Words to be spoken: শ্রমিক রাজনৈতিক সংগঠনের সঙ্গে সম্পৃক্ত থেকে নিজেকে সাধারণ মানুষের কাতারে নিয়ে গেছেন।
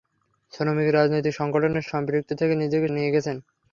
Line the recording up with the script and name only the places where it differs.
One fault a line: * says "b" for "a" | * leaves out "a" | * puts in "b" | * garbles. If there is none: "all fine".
* leaves out "সঙ্গে"
* leaves out "সাধারণ মানুষের কাতারে"